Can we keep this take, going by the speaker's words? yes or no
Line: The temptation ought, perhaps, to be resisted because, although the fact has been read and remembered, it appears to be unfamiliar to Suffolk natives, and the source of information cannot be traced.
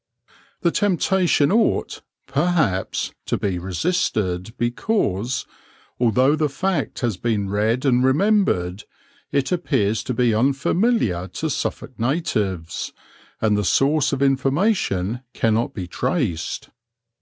yes